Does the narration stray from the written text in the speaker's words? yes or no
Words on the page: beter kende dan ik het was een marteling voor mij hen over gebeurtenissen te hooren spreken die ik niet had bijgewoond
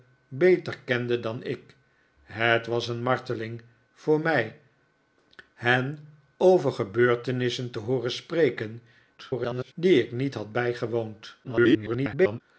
yes